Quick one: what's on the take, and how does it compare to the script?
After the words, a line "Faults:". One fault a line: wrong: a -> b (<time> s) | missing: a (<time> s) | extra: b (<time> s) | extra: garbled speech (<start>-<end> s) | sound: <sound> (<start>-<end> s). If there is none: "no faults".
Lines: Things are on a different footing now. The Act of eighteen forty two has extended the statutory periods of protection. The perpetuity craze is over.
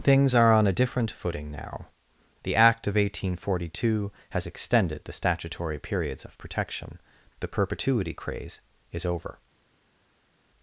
Things are on a different footing now. The Act of eighteen forty two has extended the statutory periods of protection. The perpetuity craze is over.
Faults:
no faults